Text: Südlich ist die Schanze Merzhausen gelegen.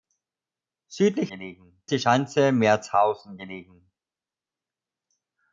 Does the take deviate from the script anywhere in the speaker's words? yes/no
yes